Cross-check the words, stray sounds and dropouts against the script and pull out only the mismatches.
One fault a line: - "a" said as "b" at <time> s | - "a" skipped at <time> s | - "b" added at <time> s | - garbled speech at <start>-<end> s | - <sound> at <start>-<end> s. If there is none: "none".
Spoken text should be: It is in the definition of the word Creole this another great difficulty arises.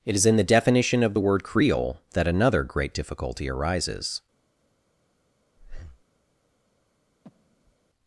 - "this" said as "that" at 2.1 s
- breath at 5.6-6.0 s
- breath at 7.2-7.8 s